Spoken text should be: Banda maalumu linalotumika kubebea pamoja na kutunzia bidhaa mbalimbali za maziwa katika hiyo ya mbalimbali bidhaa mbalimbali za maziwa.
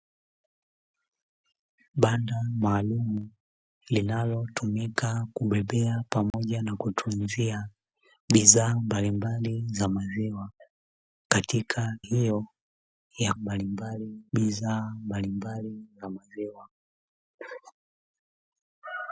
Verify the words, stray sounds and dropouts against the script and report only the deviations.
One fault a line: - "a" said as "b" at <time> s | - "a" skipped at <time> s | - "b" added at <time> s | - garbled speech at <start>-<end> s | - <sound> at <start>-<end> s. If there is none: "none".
- dropout at 6.3-6.3 s